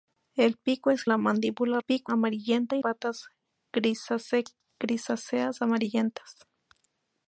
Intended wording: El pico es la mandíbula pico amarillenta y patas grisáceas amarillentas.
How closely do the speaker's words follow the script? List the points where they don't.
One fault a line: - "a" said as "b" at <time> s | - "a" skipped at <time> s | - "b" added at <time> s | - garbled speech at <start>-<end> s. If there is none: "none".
none